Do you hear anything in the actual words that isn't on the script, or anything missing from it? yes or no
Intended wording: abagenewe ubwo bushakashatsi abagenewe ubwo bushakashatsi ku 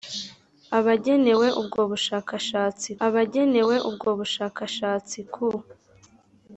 no